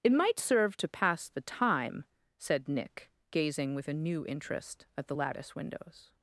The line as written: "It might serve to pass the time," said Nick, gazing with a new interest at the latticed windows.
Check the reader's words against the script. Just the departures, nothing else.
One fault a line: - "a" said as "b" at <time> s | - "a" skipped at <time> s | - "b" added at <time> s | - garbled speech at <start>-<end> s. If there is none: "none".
- "latticed" said as "lattice" at 5.1 s